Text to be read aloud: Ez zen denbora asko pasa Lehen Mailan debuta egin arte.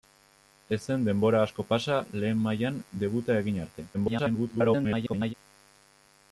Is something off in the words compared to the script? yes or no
yes